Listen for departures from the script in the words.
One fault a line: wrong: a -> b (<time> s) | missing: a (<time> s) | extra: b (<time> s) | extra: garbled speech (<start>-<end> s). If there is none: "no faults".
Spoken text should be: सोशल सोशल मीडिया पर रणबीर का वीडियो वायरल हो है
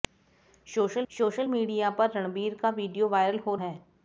no faults